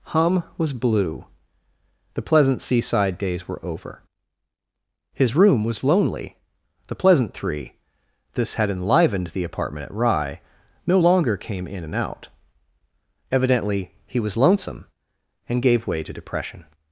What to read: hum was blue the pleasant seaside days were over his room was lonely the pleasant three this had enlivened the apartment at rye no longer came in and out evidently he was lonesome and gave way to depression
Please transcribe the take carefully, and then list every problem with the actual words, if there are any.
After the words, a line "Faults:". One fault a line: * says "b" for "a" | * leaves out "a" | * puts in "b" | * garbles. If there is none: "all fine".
hum was blue the pleasant seaside days were over his room was lonely the pleasant three this had enlivened the apartment at rye no longer came in and out evidently he was lonesome and gave way to depression
Faults:
all fine